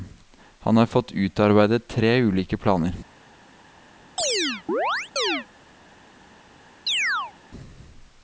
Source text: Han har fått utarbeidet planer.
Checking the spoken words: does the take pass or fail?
fail